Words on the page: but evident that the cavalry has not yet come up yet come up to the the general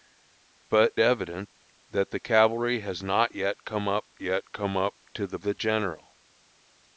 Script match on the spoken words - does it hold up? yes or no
yes